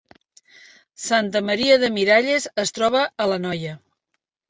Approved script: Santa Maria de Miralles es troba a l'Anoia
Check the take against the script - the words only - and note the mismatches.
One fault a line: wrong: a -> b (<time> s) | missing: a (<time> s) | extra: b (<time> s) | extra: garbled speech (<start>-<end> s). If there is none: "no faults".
no faults